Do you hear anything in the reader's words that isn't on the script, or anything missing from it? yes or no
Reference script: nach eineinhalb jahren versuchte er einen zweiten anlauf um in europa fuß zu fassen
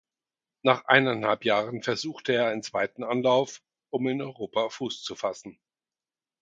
no